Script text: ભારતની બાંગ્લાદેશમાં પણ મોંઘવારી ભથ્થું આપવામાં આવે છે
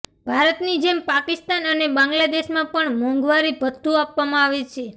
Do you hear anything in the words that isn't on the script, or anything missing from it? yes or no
yes